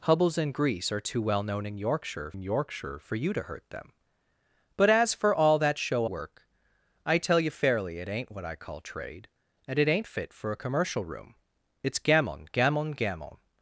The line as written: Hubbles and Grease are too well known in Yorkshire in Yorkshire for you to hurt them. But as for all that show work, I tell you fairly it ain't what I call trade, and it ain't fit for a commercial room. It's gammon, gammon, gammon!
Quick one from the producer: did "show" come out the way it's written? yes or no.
yes